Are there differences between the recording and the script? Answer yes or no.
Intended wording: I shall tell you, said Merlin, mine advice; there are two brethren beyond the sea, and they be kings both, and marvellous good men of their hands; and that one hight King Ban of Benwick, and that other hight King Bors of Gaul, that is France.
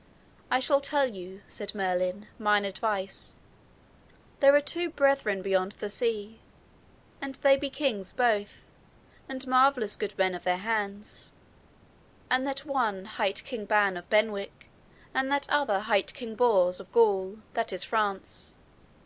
no